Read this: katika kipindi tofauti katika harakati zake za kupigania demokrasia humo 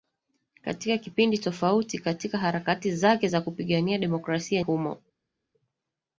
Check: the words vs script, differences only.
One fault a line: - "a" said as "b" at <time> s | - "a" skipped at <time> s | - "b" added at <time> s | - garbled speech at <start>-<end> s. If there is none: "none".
none